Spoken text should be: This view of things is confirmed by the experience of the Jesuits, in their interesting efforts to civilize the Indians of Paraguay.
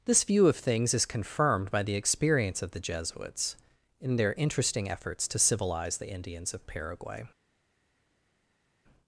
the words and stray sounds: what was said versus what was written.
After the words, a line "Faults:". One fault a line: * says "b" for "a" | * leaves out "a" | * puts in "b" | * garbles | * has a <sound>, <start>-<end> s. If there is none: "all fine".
This view of things is confirmed by the experience of the Jesuits, in their interesting efforts to civilize the Indians of Paraguay.
Faults:
all fine